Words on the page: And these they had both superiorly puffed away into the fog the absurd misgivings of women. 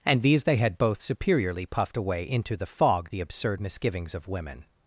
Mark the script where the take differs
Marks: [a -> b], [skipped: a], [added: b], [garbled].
And these they had both superiorly puffed away into the fog the absurd misgivings of women.